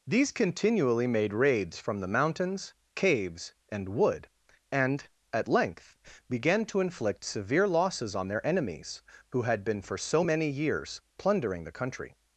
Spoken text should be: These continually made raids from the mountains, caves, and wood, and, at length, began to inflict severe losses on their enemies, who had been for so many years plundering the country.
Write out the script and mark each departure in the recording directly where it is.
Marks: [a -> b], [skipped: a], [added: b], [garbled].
These continually made raids from the mountains, caves, and wood, and, at length, began to inflict severe losses on their enemies, who had been for so many years plundering the country.